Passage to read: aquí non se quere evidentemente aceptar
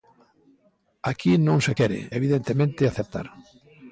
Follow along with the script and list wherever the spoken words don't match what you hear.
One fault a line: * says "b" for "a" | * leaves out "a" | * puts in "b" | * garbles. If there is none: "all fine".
all fine